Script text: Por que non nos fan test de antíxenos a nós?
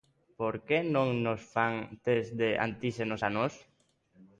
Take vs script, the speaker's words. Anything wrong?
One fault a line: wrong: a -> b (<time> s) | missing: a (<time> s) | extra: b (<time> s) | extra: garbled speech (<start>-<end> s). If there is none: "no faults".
no faults